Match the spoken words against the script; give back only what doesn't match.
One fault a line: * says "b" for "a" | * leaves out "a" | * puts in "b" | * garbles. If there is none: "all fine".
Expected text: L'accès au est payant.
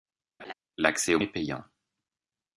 all fine